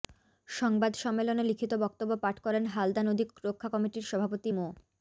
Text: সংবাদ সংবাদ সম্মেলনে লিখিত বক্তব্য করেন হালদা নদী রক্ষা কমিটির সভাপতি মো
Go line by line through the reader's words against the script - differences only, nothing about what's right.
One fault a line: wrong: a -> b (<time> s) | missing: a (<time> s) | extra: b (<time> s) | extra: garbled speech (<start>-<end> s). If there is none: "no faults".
missing: সংবাদ (0.9 s)
extra: পাঠ (2.2 s)